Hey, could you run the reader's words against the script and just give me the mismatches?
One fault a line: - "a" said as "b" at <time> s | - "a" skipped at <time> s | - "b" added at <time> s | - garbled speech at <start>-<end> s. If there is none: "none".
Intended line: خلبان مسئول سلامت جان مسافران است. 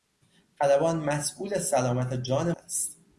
- "مسافران" skipped at 2.5 s